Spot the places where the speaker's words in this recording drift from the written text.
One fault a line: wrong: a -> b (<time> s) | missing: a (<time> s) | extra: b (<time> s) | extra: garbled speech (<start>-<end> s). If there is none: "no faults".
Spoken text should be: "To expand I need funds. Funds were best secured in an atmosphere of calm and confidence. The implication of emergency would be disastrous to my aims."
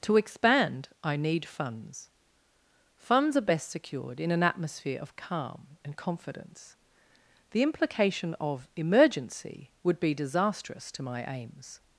wrong: were -> are (3.4 s)